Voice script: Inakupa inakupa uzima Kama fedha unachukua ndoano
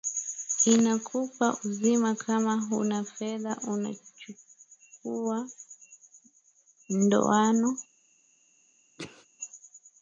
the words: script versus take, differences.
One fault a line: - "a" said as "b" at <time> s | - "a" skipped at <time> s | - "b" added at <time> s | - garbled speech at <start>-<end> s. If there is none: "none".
- "inakupa" skipped at 1.6 s
- "huna" added at 2.6 s